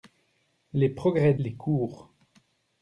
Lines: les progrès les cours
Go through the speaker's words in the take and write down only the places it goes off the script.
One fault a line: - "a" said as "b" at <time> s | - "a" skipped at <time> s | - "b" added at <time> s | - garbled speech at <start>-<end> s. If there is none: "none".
none